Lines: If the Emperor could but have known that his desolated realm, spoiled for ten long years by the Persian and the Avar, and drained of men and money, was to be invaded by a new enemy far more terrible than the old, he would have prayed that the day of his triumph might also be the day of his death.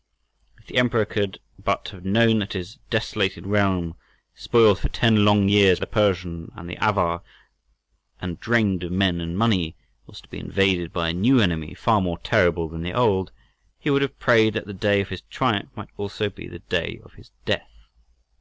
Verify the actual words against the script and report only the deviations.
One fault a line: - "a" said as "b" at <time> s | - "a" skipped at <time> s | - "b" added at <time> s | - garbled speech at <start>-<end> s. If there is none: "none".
- "by" skipped at 5.8 s